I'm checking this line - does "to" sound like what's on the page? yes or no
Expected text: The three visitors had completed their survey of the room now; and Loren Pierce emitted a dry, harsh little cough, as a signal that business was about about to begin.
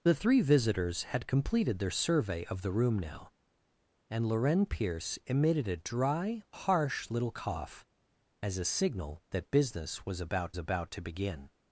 yes